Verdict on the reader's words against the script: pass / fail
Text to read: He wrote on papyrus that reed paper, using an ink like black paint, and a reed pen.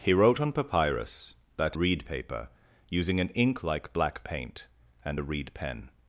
pass